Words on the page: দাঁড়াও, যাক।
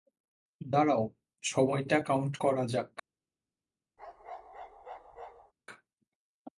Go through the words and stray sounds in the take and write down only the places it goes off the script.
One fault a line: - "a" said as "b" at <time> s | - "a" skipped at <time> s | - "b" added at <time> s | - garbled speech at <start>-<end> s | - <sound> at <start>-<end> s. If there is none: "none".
- "সময়টা কাউন্ট করা" added at 1.4 s
- bark at 4.0-5.5 s